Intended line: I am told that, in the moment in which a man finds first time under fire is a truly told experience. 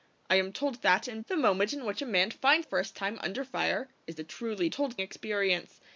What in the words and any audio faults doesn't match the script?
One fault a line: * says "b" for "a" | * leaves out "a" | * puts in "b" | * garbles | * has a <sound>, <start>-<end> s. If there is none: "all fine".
all fine